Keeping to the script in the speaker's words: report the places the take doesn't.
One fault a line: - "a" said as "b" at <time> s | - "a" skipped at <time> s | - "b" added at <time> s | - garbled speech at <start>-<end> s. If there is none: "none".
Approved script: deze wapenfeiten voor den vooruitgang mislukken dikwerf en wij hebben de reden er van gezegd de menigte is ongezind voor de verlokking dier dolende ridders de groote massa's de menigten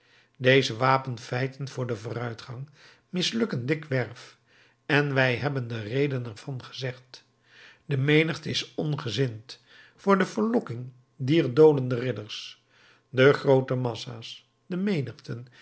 none